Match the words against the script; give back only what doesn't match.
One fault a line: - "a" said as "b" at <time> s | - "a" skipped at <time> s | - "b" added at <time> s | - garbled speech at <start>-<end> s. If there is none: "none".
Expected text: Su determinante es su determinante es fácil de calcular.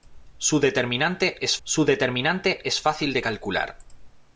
none